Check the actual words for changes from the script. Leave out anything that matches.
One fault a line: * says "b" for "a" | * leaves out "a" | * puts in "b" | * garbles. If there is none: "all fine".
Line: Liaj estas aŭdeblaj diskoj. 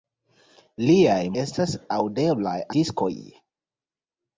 all fine